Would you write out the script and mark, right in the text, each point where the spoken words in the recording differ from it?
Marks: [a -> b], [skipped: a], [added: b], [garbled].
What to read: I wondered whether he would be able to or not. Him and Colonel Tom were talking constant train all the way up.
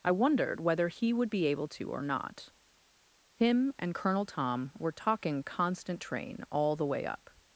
I wondered whether he would be able to or not. Him and Colonel Tom were talking constant train all the way up.